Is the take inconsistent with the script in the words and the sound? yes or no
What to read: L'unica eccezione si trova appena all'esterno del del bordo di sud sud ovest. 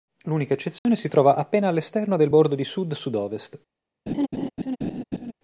yes